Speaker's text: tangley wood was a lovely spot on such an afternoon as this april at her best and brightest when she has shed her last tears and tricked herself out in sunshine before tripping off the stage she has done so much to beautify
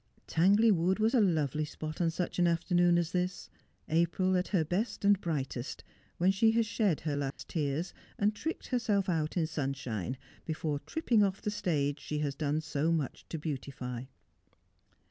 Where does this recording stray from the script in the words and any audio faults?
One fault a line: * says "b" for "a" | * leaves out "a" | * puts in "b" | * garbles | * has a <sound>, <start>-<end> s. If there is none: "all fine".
* has a dropout, 7.3-7.4 s